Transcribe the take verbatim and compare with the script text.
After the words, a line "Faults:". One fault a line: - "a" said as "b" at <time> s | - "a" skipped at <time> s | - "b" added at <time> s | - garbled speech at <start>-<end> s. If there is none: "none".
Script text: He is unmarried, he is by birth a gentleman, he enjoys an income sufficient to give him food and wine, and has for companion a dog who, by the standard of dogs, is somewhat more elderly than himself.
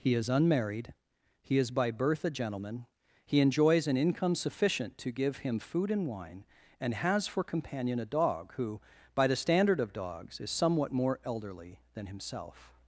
He is unmarried, he is by birth a gentleman, he enjoys an income sufficient to give him food and wine, and has for companion a dog who, by the standard of dogs, is somewhat more elderly than himself.
Faults:
none